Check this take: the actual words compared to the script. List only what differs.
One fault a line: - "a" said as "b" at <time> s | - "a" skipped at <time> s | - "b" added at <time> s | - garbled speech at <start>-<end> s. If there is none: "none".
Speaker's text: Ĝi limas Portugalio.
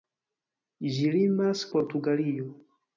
none